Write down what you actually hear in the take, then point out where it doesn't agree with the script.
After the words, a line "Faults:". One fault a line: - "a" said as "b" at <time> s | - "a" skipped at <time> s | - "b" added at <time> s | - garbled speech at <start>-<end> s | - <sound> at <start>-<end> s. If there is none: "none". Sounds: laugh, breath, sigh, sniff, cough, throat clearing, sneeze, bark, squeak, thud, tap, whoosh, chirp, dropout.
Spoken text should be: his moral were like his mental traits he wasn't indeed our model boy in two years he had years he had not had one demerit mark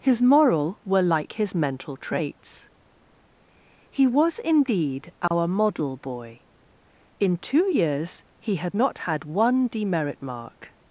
his moral were like his mental traits he was indeed our model boy in two years he had not had one demerit mark
Faults:
- "wasn't" said as "was" at 4.1 s
- dropout at 5.3-5.3 s
- "years he had" skipped at 8.8 s